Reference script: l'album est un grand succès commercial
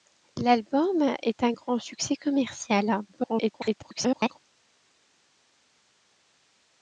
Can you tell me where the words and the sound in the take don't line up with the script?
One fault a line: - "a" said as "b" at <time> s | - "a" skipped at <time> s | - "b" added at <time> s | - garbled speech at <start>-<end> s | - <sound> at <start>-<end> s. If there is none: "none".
- garbled speech at 3.1-4.4 s